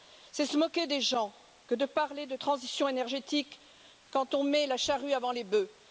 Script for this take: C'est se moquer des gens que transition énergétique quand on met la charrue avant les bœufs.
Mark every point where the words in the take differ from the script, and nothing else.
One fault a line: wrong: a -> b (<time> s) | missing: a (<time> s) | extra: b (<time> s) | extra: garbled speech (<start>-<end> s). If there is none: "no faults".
extra: de parler de (1.8 s)